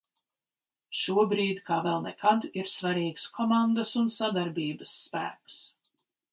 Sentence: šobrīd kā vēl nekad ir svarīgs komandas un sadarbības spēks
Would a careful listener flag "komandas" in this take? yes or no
no